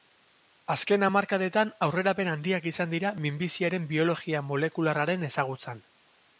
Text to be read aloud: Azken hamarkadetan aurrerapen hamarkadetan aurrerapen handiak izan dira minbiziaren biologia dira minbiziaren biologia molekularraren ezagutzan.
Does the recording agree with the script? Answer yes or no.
no